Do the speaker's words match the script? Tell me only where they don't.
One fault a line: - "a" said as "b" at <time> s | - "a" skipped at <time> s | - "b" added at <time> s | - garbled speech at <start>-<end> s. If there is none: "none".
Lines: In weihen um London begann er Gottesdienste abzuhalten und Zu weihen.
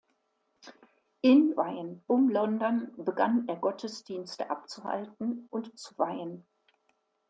none